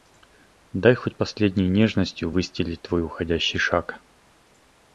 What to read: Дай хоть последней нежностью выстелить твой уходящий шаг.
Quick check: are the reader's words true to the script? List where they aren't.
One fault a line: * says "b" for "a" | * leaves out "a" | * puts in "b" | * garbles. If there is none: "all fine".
all fine